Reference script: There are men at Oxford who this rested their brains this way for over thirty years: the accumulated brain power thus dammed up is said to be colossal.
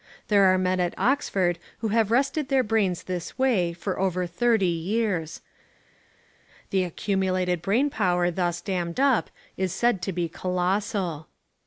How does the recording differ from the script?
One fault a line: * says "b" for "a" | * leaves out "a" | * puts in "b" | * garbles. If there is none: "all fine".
* says "have" for "this"